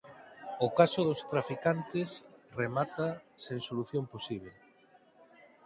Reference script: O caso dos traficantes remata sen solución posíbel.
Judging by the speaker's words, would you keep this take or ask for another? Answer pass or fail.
pass